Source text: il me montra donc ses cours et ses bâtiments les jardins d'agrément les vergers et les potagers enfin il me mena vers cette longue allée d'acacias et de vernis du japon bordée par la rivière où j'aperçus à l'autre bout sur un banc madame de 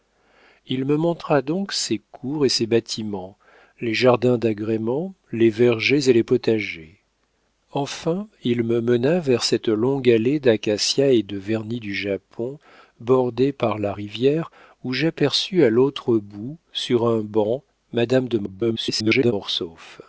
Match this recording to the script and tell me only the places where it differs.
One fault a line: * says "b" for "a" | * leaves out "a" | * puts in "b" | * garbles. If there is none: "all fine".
* garbles